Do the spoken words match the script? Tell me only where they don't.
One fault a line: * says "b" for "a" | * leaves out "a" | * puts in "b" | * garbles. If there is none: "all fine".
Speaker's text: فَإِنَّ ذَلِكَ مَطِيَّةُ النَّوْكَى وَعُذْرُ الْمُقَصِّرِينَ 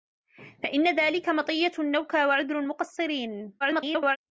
* garbles